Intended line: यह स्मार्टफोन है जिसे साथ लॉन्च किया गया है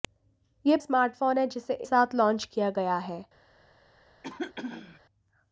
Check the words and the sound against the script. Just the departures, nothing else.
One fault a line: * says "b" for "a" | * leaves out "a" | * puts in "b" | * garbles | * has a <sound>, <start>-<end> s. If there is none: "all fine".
* has a throat clearing, 4.2-5.0 s